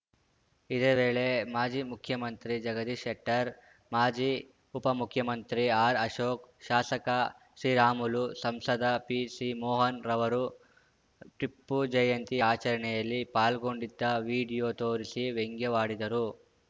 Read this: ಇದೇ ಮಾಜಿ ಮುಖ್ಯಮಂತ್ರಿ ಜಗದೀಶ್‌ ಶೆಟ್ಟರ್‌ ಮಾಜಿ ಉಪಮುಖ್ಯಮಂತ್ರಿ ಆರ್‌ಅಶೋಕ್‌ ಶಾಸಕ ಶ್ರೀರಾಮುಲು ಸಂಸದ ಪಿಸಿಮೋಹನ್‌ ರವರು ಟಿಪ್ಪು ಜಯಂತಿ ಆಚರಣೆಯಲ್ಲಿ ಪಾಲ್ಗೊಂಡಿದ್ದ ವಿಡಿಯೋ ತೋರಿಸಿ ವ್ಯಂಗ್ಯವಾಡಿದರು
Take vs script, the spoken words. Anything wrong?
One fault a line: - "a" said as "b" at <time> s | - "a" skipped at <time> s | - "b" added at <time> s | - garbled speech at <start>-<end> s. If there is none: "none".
- "ವೇಳೆ" added at 0.9 s